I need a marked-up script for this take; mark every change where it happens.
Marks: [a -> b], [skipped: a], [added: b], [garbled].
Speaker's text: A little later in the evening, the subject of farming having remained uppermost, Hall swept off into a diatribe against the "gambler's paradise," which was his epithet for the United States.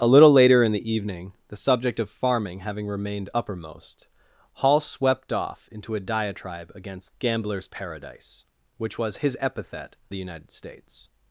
A little later in the evening, the subject of farming having remained uppermost, Hall swept off into a diatribe against [skipped: the] "gambler's paradise," which was his epithet [skipped: for] the United States.